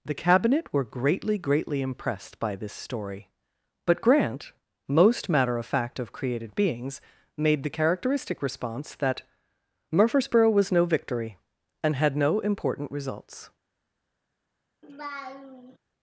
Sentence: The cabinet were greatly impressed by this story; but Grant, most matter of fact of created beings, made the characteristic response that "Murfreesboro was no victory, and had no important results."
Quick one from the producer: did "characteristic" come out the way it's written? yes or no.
yes